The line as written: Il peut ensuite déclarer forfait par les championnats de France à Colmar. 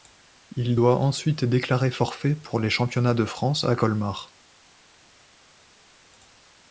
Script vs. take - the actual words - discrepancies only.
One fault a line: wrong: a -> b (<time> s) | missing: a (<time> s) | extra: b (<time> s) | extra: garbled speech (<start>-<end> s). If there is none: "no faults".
wrong: peut -> doit (0.7 s)
wrong: par -> pour (2.4 s)